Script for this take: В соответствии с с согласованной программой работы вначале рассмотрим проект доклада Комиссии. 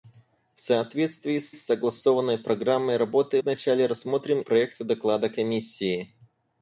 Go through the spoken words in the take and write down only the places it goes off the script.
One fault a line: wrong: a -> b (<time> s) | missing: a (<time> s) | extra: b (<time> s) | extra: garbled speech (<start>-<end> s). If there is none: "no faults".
no faults